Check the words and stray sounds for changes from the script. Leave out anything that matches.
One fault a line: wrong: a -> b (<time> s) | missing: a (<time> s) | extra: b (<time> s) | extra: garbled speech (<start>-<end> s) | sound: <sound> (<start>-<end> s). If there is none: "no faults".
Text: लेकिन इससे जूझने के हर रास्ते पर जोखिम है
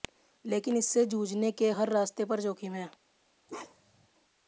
sound: bark (3.5-4.1 s)